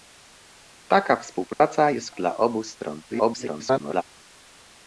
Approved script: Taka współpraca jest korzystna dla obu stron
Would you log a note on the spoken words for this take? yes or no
yes